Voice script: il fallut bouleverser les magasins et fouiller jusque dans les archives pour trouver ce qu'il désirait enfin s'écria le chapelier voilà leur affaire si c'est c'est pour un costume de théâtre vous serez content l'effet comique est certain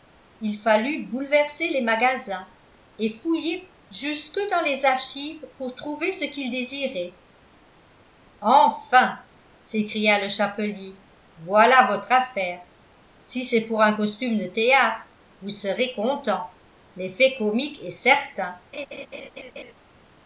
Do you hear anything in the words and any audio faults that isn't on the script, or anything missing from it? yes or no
yes